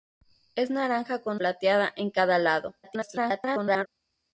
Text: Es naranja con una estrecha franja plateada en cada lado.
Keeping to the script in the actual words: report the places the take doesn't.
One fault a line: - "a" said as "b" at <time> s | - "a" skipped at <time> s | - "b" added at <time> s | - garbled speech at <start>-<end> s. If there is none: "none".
- "una estrecha franja" skipped at 1.4 s
- garbled speech at 2.8-3.9 s